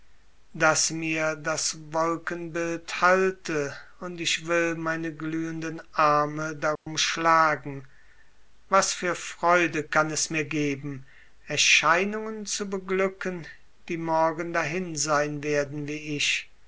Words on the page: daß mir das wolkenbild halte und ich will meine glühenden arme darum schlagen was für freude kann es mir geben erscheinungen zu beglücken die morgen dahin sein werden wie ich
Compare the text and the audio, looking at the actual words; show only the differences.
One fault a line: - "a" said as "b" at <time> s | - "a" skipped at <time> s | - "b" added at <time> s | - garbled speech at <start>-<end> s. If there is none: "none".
none